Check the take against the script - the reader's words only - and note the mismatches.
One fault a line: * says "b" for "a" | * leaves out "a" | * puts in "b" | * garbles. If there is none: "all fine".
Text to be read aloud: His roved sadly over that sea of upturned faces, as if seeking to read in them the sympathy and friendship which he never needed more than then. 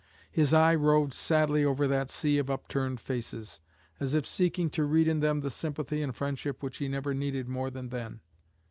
* puts in "eye"